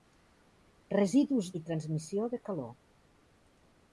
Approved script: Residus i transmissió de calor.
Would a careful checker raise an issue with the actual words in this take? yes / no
no